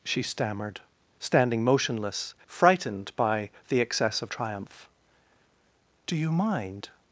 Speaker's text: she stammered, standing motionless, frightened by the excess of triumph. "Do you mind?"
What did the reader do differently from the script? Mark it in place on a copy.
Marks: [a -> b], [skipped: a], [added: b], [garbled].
she stammered, standing motionless, frightened by the excess of triumph. "Do you mind?"